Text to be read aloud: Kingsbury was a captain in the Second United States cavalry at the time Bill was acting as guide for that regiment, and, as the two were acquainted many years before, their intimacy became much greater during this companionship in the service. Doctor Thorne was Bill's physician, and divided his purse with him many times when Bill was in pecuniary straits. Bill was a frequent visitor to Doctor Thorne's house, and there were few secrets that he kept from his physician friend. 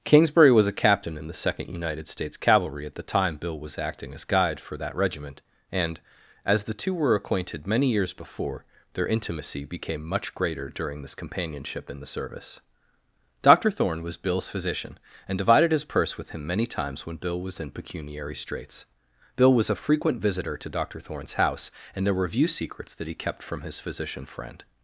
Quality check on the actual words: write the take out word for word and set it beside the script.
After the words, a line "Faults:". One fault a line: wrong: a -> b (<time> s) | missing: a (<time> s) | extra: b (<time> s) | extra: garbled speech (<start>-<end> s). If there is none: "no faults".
Kingsbury was a captain in the Second United States cavalry at the time Bill was acting as guide for that regiment, and, as the two were acquainted many years before, their intimacy became much greater during this companionship in the service. Doctor Thorne was Bill's physician, and divided his purse with him many times when Bill was in pecuniary straits. Bill was a frequent visitor to Doctor Thorne's house, and there were view secrets that he kept from his physician friend.
Faults:
wrong: few -> view (22.3 s)